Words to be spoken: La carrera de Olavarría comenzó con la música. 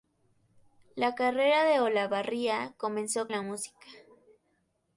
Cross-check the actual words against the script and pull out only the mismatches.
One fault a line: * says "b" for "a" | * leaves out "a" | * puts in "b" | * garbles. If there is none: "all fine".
* leaves out "con"